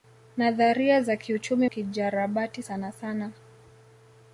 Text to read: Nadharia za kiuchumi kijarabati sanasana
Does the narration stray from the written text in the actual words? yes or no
no